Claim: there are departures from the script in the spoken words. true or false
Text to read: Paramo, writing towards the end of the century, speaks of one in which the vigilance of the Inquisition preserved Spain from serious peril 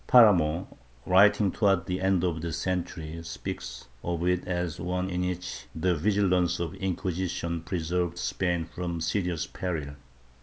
true